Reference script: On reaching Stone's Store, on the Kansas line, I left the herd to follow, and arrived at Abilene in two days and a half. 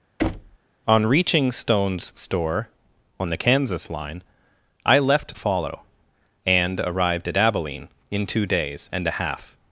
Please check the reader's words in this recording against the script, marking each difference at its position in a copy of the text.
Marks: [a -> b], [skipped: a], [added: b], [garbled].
On reaching Stone's Store, on the Kansas line, I left [skipped: the herd to] follow, and arrived at Abilene in two days and a half.